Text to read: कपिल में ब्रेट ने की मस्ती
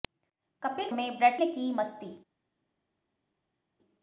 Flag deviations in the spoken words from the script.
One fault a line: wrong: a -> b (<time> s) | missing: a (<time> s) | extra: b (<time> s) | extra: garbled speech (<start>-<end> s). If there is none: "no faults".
no faults